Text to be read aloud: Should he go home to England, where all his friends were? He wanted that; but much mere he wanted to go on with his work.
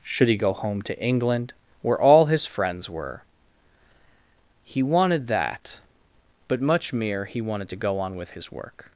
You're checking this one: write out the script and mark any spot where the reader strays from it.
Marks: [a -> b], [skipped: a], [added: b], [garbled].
Should he go home to England, where all his friends were? He wanted that; but much mere he wanted to go on with his work.